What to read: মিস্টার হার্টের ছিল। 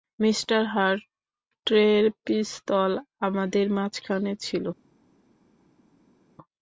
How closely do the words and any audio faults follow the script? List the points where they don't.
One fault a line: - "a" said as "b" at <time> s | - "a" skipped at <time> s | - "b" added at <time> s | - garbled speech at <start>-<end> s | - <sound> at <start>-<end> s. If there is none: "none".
- "পিস্তল আমাদের মাঝখানে" added at 2.2 s